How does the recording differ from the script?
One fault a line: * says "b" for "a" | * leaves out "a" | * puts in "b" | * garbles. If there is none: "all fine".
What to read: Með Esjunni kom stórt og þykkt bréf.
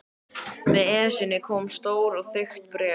all fine